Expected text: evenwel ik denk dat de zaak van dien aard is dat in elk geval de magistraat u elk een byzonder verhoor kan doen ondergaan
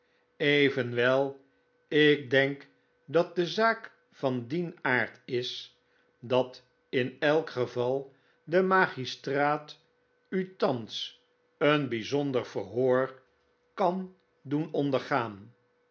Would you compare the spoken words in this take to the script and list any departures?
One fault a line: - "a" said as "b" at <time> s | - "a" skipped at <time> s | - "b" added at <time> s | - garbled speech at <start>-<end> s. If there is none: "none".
- "elk" said as "thans" at 10.6 s